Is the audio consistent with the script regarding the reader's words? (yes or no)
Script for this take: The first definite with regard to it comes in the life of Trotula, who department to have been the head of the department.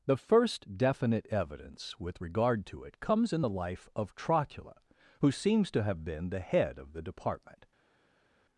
no